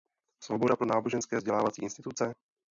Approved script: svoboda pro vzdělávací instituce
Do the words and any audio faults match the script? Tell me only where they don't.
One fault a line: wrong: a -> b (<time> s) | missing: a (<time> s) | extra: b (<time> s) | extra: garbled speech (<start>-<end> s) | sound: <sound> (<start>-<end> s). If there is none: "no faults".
extra: náboženské (0.8 s)